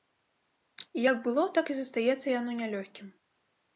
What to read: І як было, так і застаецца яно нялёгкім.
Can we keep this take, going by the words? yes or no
yes